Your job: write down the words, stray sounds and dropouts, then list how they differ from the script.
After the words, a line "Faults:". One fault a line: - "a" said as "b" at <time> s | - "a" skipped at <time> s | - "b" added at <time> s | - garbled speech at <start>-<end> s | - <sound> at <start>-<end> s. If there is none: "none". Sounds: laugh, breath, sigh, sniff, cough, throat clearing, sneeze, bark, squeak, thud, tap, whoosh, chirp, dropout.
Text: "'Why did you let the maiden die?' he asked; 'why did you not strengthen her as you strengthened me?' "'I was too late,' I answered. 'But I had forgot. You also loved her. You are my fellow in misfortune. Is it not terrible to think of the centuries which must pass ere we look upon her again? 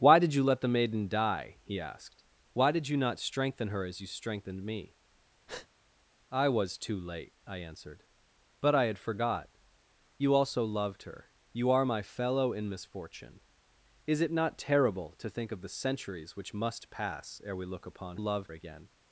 "'Why did you let the maiden die?' he asked; 'why did you not strengthen her as you strengthened me?' "'I was too late,' I answered. 'But I had forgot. You also loved her. You are my fellow in misfortune. Is it not terrible to think of the centuries which must pass ere we look upon loved again?
Faults:
- breath at 5.5-5.7 s
- "her" said as "loved" at 18.1 s